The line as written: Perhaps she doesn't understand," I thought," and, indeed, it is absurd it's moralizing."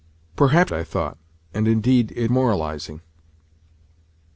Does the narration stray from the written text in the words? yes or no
yes